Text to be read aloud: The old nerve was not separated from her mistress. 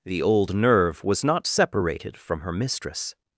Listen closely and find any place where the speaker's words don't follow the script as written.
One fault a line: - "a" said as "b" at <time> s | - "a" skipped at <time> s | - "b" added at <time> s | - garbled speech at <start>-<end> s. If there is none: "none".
none